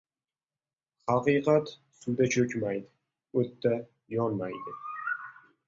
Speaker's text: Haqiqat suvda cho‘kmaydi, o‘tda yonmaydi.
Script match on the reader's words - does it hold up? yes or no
yes